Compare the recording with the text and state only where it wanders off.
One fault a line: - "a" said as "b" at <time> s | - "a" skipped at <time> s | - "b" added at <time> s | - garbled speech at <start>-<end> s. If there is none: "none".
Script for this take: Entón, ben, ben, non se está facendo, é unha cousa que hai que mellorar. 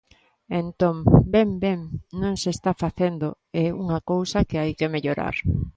none